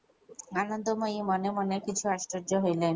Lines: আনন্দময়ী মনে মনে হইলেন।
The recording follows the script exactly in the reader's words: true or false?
false